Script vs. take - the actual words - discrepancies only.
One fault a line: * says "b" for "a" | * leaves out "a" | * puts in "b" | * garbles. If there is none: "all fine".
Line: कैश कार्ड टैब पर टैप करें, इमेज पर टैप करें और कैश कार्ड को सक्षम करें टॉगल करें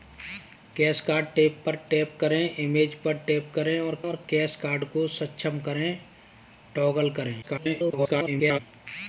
* puts in "और"
* garbles